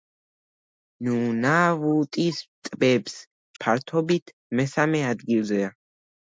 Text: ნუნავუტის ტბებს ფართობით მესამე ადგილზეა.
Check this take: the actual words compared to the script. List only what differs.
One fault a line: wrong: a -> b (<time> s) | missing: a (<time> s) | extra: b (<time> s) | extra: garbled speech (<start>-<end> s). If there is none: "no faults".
no faults